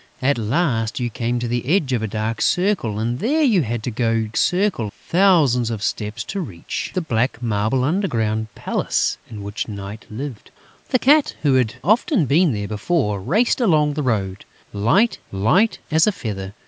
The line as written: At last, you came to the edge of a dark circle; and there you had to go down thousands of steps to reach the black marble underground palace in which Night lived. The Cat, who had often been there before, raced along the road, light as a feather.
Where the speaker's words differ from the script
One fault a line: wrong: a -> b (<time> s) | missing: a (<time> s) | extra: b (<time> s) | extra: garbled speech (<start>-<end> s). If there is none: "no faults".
wrong: down -> circle (4.4 s)
extra: light (15.3 s)